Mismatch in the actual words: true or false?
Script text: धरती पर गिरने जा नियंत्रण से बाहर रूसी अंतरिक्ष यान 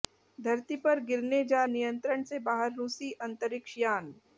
false